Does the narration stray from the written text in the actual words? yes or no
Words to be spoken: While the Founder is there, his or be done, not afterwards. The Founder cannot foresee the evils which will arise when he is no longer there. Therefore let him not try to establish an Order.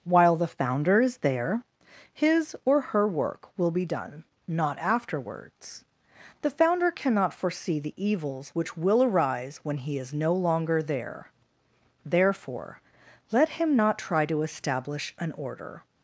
yes